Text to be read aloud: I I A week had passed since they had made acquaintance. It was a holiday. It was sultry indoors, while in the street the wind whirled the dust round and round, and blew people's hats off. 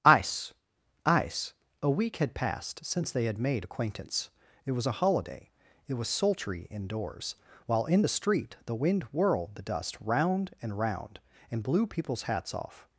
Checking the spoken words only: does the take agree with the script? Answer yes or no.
no